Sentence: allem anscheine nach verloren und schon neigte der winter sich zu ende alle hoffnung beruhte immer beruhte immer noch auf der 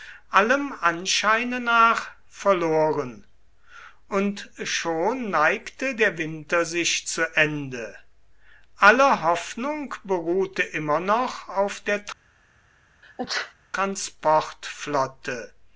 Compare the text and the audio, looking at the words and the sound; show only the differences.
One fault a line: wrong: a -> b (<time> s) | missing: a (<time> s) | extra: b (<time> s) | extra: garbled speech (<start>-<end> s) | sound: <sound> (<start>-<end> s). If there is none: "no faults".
missing: beruhte immer (11.0 s)
sound: sneeze (13.0-13.5 s)